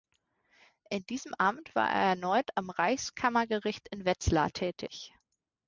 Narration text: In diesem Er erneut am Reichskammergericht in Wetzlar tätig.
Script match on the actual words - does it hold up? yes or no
no